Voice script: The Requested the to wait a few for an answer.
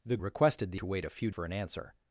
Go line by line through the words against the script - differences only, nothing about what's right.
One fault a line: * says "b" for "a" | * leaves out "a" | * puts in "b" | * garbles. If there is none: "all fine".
all fine